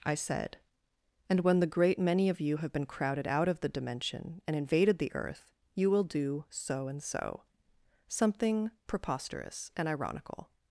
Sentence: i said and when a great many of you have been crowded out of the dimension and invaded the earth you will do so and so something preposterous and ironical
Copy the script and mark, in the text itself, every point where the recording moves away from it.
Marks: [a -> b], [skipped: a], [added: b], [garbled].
i said and when [a -> the] great many of you have been crowded out of the dimension and invaded the earth you will do so and so something preposterous and ironical